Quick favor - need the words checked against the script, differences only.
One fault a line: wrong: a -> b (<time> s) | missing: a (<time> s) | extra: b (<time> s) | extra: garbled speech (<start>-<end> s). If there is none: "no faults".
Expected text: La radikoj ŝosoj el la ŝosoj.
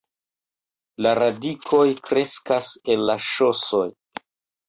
wrong: ŝosoj -> kreskas (2.1 s)